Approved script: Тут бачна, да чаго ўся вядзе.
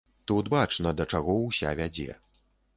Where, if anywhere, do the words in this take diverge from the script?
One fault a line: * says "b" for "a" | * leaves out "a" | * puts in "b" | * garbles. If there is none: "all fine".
all fine